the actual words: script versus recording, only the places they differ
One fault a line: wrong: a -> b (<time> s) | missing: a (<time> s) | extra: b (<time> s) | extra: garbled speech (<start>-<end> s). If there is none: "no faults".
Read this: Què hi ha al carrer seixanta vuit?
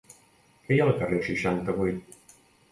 no faults